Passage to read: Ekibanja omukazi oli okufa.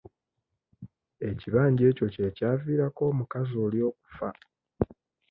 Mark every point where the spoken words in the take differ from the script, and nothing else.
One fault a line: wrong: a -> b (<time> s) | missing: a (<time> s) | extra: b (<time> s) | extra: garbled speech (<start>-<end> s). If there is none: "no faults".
extra: ekyo kye kyaviirako (1.9 s)